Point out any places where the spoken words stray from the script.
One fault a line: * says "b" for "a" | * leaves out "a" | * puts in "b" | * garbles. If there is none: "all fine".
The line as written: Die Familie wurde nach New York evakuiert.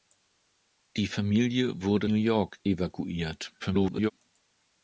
* leaves out "nach"
* garbles